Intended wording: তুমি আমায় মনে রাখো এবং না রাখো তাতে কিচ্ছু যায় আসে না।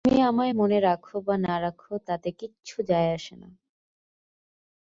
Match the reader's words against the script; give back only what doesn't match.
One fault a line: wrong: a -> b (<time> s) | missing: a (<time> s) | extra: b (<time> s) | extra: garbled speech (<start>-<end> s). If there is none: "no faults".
wrong: এবং -> বা (1.2 s)